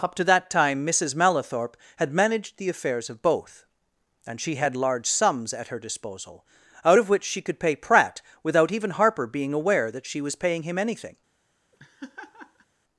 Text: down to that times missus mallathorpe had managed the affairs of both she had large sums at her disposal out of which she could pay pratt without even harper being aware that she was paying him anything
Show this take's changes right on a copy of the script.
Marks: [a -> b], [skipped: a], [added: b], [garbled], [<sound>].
[down -> up] to that [times -> time] missus mallathorpe had managed the affairs of both [added: and] she had large sums at her disposal out of which she could pay pratt without even harper being aware that she was paying him anything [laugh]